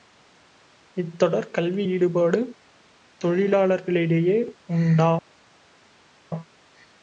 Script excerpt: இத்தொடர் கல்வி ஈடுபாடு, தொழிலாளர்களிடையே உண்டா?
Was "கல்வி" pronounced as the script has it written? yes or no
yes